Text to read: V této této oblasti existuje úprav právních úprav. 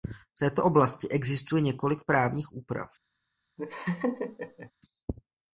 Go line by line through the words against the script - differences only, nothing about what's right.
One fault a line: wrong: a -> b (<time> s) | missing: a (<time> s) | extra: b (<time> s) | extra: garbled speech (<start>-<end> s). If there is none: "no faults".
missing: této (0.7 s)
wrong: úprav -> několik (1.6 s)